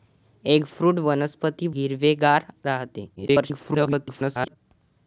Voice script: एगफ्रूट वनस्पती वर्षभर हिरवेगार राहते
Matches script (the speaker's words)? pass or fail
fail